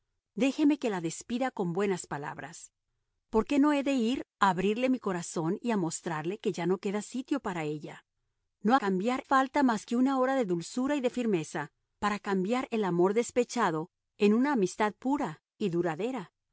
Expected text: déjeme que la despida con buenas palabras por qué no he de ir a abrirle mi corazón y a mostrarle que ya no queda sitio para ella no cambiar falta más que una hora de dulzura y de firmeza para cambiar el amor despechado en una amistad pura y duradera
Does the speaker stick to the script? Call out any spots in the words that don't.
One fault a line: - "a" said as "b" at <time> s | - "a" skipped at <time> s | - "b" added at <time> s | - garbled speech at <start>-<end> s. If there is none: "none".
none